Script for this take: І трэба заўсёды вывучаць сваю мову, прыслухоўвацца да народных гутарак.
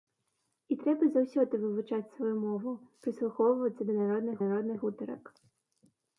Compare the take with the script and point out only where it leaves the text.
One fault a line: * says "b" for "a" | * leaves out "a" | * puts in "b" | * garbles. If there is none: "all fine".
* puts in "народных"